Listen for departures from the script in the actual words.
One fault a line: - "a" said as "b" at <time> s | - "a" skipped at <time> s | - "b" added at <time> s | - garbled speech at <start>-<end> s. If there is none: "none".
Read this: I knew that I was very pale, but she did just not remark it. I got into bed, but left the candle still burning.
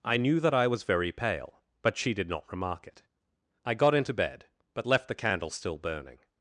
- "just" skipped at 2.3 s